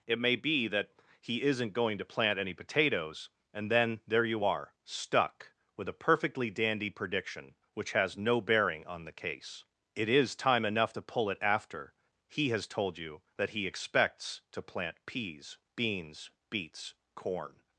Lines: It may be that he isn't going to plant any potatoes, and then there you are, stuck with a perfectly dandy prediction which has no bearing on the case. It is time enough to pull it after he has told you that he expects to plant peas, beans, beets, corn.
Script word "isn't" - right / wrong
right